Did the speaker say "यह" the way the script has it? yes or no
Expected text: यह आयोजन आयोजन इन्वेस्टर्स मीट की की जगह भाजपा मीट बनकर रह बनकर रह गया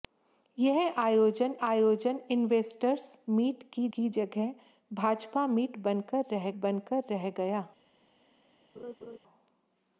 yes